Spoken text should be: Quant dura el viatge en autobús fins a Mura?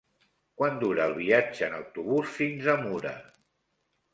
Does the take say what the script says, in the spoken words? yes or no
yes